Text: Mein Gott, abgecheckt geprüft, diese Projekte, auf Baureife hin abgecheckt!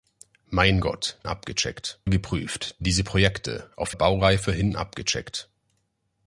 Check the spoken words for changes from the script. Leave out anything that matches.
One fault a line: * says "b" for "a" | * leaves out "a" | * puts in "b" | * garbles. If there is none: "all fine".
all fine